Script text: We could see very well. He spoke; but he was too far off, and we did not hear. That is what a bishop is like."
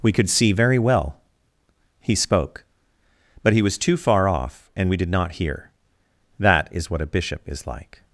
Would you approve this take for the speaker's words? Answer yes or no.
yes